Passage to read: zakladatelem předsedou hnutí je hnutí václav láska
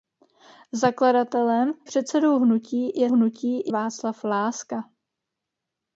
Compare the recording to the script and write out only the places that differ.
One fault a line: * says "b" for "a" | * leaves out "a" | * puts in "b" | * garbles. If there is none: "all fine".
all fine